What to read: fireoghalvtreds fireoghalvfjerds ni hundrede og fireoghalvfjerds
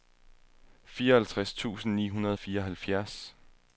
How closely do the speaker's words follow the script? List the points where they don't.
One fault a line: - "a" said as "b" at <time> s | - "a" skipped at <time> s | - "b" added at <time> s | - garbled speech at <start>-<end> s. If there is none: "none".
- "fireoghalvfjerds" said as "tusind" at 1.5 s